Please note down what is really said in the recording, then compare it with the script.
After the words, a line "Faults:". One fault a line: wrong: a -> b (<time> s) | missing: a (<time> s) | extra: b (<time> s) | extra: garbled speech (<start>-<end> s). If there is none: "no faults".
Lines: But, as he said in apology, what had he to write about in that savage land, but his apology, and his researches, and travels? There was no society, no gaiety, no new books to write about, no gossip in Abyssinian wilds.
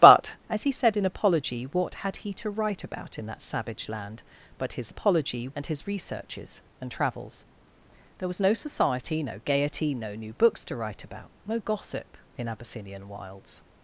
But, as he said in apology, what had he to write about in that savage land, but his apology, and his researches, and travels? There was no society, no gaiety, no new books to write about, no gossip in Abyssinian wilds.
Faults:
no faults